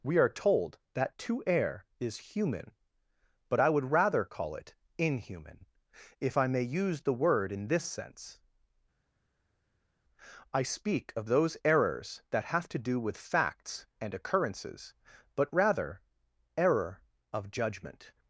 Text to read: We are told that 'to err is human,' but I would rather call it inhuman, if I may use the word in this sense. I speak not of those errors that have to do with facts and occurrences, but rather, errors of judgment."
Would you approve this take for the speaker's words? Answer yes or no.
no